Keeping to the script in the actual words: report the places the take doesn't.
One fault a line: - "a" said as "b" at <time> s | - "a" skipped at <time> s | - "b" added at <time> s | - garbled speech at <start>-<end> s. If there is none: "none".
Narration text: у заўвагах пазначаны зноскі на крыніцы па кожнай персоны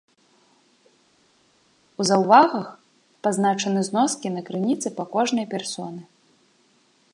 none